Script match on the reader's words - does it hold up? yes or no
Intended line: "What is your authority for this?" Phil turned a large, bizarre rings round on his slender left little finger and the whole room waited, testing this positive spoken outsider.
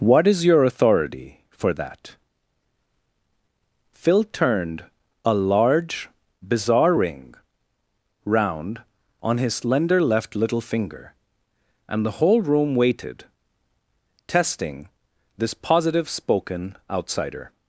no